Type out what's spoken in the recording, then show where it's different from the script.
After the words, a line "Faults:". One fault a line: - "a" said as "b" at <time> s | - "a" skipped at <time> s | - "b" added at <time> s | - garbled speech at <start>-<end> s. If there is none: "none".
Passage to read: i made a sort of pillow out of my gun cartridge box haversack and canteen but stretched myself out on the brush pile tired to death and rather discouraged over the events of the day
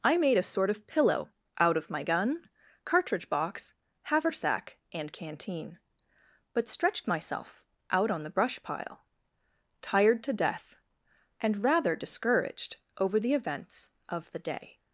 i made a sort of pillow out of my gun cartridge box haversack and canteen but stretched myself out on the brush pile tired to death and rather discouraged over the events of the day
Faults:
none